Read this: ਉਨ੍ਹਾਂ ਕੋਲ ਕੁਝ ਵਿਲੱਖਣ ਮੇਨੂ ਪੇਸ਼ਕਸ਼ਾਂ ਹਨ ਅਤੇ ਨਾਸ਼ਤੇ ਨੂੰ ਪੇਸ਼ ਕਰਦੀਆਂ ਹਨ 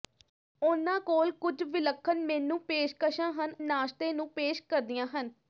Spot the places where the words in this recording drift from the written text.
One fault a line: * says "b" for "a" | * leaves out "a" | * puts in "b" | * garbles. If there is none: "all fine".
* leaves out "ਅਤੇ"